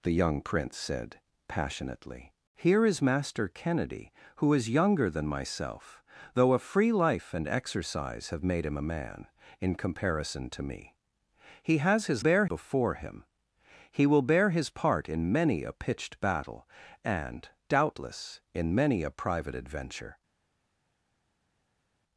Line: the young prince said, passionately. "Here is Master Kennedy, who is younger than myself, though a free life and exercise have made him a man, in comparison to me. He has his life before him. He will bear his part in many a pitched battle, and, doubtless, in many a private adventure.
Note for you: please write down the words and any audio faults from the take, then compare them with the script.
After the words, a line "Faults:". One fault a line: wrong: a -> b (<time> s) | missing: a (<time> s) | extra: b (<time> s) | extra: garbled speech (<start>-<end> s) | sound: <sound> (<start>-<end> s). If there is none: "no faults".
the young prince said, passionately. "Here is Master Kennedy, who is younger than myself, though a free life and exercise have made him a man, in comparison to me. He has his bear before him. He will bear his part in many a pitched battle, and, doubtless, in many a private adventure.
Faults:
wrong: life -> bear (12.2 s)